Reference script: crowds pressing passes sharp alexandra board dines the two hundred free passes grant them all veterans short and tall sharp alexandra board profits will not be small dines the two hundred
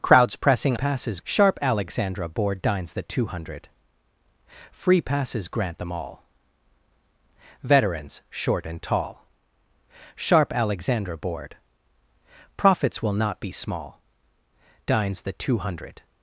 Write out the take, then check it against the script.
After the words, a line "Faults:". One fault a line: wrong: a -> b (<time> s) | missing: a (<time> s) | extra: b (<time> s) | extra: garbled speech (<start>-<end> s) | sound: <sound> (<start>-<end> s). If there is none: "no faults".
crowds pressing passes sharp alexandra board dines the two hundred free passes grant them all veterans short and tall sharp alexandra board profits will not be small dines the two hundred
Faults:
no faults